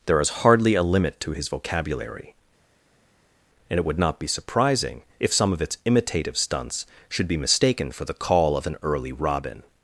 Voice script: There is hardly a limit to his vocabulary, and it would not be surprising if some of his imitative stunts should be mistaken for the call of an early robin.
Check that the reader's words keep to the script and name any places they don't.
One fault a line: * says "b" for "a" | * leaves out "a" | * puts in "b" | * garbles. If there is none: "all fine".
* says "its" for "his"